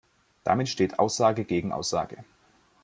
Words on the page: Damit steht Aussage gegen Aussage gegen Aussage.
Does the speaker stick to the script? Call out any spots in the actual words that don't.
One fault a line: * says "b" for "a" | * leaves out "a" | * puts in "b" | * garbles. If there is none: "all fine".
* leaves out "gegen Aussage"